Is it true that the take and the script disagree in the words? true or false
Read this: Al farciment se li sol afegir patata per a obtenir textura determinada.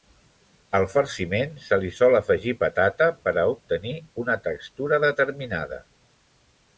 true